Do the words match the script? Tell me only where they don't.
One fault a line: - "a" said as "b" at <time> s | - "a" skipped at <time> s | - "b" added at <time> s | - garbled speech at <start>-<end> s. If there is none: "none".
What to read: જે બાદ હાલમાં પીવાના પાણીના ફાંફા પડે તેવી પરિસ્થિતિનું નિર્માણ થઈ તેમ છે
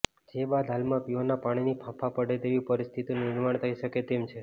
- "શકે" added at 3.8 s